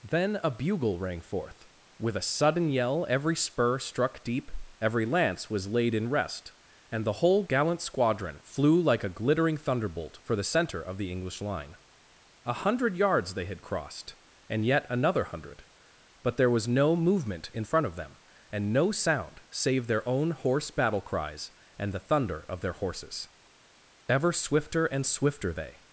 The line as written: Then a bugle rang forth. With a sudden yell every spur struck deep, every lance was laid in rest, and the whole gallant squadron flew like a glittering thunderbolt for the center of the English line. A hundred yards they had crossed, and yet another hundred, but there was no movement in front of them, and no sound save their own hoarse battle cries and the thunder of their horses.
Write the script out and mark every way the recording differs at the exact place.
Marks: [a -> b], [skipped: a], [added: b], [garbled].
Then a bugle rang forth. With a sudden yell every spur struck deep, every lance was laid in rest, and the whole gallant squadron flew like a glittering thunderbolt for the center of the English line. A hundred yards they had crossed, and yet another hundred, but there was no movement in front of them, and no sound save their own hoarse battle cries and the thunder of their horses. [added: Ever swifter and swifter they]